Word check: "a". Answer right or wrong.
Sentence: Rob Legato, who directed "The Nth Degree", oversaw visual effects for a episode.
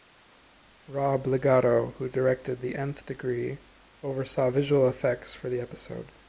wrong